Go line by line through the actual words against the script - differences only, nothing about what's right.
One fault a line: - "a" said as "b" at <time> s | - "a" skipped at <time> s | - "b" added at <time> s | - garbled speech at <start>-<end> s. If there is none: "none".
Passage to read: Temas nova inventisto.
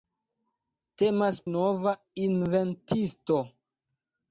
none